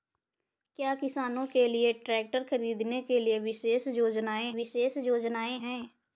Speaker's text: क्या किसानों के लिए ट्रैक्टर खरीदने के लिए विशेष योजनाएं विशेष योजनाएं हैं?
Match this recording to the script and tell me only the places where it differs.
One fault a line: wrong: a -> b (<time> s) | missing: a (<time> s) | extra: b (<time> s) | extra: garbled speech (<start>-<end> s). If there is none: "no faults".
no faults